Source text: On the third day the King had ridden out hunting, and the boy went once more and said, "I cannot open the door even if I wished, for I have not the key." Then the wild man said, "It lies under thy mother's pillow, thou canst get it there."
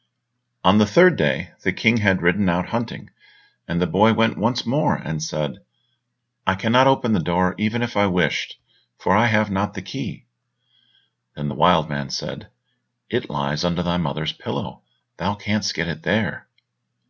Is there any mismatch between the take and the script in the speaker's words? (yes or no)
no